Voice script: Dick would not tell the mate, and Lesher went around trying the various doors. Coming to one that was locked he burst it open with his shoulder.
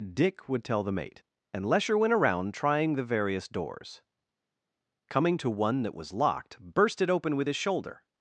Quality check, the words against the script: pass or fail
fail